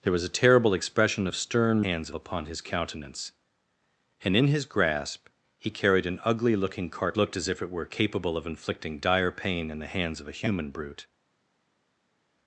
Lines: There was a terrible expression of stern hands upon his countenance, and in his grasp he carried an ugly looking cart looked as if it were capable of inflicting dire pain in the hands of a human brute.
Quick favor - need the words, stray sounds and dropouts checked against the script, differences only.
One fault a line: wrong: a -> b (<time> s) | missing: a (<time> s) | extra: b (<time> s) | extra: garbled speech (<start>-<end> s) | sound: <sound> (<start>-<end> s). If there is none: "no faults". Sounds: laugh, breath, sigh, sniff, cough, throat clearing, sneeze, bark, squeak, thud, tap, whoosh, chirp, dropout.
no faults